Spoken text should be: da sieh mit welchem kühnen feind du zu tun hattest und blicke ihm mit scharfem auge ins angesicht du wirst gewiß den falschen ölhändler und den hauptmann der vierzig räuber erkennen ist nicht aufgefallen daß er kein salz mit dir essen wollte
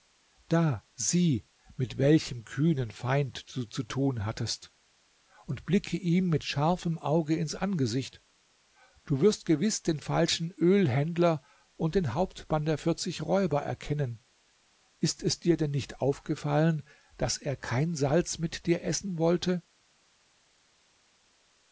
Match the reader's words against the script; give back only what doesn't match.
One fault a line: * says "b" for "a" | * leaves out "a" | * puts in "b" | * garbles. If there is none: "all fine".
* puts in "es dir denn"